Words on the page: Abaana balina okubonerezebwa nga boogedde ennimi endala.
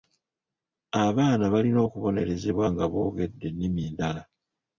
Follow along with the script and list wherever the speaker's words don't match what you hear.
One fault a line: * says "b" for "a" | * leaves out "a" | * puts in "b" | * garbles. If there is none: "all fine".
all fine